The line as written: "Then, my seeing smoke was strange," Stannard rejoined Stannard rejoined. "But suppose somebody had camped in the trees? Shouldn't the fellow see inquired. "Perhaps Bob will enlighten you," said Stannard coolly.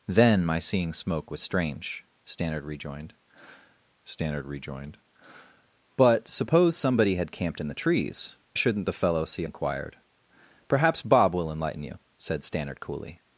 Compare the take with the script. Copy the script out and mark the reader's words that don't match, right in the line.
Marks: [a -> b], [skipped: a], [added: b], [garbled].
"Then, my seeing smoke was strange," Stannard rejoined Stannard rejoined. "But suppose somebody had camped in the trees? Shouldn't the fellow see inquired. "Perhaps Bob will enlighten you," said Stannard coolly.